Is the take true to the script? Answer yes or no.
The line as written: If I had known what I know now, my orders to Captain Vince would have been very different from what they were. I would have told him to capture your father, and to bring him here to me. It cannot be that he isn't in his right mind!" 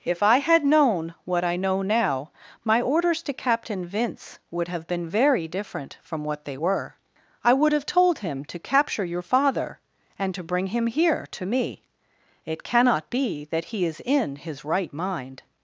no